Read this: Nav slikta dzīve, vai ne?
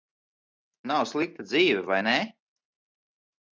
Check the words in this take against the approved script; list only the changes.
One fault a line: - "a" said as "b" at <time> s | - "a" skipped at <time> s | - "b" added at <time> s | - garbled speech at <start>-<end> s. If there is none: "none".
none